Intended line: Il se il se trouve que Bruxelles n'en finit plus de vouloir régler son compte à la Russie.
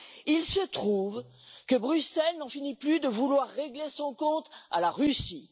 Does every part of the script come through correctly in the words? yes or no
no